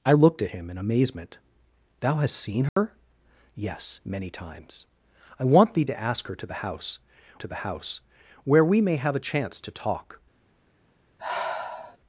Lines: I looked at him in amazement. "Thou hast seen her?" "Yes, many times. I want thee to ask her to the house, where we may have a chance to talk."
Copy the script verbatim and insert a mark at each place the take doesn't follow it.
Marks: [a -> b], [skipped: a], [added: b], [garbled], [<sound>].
I looked at him in amazement. "Thou hast seen her?" [dropout] "Yes, many times. I want thee to ask her to the house, [added: to the house] where we may have a chance to talk." [sigh]